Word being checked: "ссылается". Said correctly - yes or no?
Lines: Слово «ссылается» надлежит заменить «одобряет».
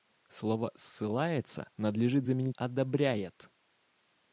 yes